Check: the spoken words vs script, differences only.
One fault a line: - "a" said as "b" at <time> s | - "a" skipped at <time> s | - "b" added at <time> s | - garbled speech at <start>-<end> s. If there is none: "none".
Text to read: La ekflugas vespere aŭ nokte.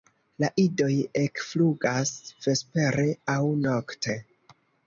- "idoj" added at 0.6 s